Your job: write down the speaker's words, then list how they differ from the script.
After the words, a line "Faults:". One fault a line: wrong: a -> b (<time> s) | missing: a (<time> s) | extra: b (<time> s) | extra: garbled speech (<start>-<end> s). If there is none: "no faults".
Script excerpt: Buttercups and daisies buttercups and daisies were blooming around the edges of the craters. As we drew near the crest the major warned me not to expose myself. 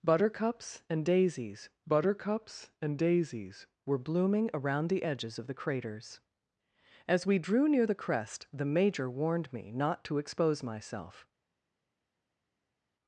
Buttercups and daisies buttercups and daisies were blooming around the edges of the craters. As we drew near the crest the major warned me not to expose myself.
Faults:
no faults